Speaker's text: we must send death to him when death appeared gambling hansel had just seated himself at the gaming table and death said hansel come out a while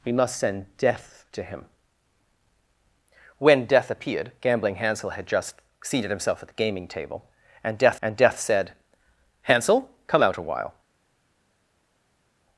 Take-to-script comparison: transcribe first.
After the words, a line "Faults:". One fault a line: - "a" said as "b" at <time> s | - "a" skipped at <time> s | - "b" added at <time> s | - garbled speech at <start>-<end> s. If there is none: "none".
we must send death to him when death appeared gambling hansel had just seated himself at the gaming table and death and death said hansel come out a while
Faults:
- "and death" added at 8.0 s